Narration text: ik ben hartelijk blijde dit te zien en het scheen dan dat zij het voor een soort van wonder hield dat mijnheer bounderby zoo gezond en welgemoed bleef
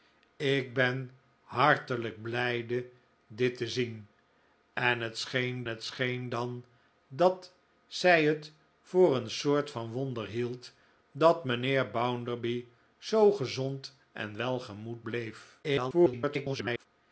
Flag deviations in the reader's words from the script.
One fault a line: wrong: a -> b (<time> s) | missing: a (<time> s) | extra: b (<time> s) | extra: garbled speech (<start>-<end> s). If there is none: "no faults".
extra: het scheen (5.6 s)
extra: garbled speech (15.6-16.9 s)